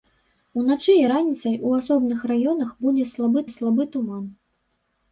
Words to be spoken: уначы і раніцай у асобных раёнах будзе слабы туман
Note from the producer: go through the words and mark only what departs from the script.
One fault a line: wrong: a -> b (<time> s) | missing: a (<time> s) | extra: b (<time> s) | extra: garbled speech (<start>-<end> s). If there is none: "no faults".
extra: слабы (3.5 s)